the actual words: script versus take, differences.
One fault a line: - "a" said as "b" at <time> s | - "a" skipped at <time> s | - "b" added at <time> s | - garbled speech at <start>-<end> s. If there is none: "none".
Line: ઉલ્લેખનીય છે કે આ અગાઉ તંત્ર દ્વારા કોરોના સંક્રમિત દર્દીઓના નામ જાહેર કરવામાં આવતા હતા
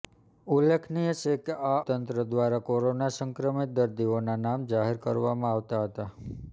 - "અગાઉ" skipped at 1.8 s